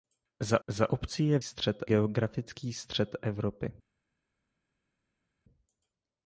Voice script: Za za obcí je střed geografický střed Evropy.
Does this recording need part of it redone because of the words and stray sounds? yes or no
no